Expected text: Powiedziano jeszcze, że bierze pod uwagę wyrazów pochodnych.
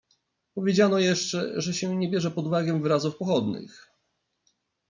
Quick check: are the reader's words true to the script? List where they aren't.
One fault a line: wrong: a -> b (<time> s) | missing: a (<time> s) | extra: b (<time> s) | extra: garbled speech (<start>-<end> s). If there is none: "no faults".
extra: się nie (1.7 s)